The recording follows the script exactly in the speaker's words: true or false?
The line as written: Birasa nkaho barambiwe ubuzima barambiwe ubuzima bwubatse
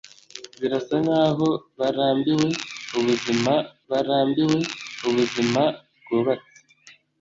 true